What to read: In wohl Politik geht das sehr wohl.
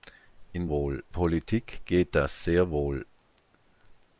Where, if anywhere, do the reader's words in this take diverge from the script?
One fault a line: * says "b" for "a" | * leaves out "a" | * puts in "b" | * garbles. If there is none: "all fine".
all fine